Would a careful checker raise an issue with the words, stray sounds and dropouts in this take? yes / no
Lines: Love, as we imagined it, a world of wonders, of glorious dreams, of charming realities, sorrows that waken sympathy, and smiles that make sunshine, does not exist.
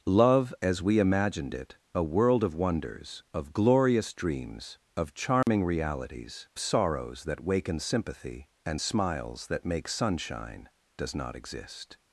yes